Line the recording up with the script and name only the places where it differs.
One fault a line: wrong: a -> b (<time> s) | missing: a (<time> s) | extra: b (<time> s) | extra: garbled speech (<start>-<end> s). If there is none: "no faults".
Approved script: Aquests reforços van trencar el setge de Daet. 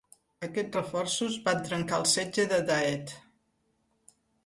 no faults